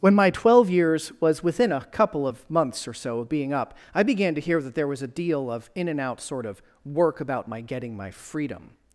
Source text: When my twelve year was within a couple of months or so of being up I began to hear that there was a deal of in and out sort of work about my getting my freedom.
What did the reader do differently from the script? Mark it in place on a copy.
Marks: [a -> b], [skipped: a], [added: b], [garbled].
When my twelve [year -> years] was within a couple of months or so of being up I began to hear that there was a deal of in and out sort of work about my getting my freedom.